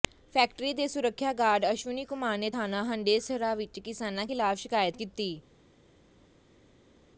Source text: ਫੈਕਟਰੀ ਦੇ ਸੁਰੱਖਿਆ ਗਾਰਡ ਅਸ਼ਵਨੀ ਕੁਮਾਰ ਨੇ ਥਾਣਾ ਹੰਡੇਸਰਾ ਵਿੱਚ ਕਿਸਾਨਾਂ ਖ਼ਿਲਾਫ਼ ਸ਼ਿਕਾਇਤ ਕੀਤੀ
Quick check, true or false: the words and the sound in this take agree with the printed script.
true